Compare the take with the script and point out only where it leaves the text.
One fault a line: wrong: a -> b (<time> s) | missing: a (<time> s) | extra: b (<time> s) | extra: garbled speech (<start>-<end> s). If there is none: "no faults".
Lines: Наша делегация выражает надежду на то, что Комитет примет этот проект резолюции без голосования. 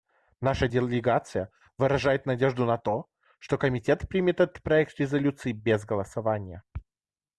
no faults